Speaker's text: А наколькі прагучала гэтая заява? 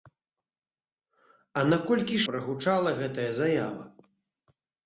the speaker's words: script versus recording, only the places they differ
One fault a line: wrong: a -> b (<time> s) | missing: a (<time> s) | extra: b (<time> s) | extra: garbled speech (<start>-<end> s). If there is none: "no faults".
no faults